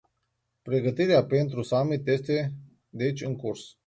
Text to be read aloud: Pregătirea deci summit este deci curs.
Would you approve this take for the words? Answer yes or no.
no